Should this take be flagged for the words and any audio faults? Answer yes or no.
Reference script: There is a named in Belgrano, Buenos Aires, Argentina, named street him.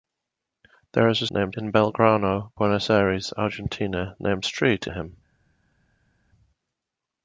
no